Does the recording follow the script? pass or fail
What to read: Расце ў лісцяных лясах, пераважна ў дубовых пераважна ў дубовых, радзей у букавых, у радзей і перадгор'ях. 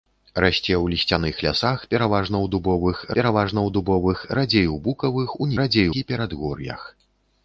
pass